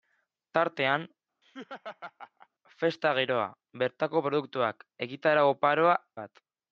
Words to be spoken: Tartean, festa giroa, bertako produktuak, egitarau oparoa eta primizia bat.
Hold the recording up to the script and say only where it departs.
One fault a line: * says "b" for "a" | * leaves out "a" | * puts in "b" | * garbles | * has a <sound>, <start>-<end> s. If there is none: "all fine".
* has a laugh, 1.4-2.5 s
* leaves out "eta primizia"